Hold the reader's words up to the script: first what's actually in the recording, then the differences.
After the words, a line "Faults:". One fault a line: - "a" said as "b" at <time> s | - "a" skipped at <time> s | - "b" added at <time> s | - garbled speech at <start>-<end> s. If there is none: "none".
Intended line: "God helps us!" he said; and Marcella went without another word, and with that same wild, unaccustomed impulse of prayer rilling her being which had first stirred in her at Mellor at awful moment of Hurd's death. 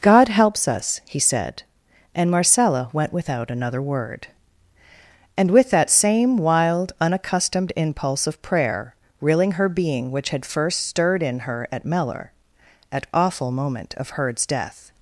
"God helps us!" he said; and Marcella went without another word, and with that same wild, unaccustomed impulse of prayer rilling her being which had first stirred in her at Mellor at awful moment of Hurd's death.
Faults:
none